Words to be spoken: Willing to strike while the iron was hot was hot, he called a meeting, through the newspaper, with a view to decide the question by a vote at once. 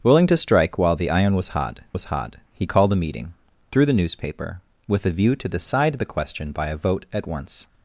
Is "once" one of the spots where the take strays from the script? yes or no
no